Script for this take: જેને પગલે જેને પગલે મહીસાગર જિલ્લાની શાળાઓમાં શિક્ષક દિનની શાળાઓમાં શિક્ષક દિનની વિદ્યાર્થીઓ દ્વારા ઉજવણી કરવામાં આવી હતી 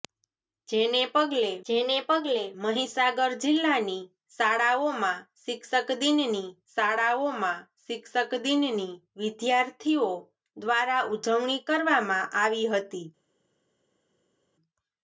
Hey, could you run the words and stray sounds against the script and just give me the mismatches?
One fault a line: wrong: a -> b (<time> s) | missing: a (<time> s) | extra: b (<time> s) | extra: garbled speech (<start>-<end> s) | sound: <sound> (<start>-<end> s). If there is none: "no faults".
no faults